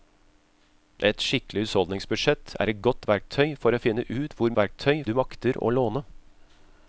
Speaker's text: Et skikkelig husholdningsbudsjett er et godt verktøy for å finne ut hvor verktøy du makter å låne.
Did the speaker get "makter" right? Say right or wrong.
right